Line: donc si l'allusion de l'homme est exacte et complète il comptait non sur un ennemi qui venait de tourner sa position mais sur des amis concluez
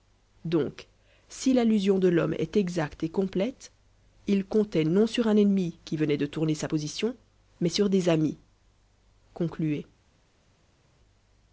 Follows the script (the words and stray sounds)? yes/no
yes